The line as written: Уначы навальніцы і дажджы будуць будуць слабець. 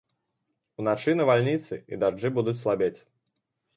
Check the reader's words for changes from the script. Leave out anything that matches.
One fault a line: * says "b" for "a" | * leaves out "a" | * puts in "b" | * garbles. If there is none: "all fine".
* leaves out "будуць"